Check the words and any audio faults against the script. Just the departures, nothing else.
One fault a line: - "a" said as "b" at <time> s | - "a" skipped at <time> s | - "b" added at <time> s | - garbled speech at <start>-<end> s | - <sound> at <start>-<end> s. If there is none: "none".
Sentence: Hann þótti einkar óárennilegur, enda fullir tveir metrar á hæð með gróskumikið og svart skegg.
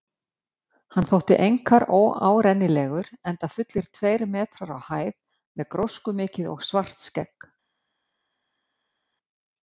none